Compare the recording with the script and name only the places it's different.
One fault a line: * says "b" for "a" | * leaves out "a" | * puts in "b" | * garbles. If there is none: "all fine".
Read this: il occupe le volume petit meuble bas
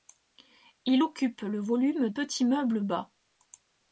all fine